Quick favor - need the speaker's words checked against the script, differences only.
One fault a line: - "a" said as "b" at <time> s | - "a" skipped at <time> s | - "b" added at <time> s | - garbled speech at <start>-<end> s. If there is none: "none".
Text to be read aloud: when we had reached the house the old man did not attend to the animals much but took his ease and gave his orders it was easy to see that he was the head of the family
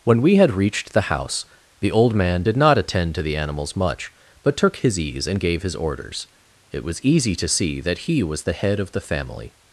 none